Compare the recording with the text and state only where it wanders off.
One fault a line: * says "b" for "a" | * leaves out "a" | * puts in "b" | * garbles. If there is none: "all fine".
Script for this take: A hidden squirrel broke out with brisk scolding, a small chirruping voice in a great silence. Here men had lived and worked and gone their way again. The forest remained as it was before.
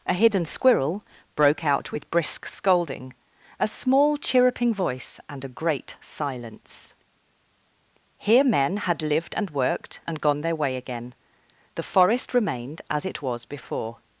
* says "and" for "in"